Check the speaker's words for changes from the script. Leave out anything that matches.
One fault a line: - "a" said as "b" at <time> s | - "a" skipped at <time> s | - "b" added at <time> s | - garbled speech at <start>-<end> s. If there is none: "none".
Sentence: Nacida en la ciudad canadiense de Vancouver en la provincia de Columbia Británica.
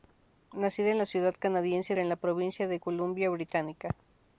- "de Vancouver" skipped at 1.9 s